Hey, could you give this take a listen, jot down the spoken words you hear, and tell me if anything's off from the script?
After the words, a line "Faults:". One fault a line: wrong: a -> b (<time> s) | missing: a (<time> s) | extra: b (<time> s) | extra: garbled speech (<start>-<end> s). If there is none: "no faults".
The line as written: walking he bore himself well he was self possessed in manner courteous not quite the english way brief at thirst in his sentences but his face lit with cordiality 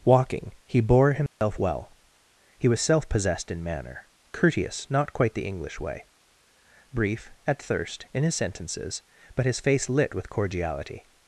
walking he bore himself well he was self possessed in manner courteous not quite the english way brief at thirst in his sentences but his face lit with cordiality
Faults:
no faults